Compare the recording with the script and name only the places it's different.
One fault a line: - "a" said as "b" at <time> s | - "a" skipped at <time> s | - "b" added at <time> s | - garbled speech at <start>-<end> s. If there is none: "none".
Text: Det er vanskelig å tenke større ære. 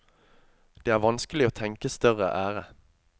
none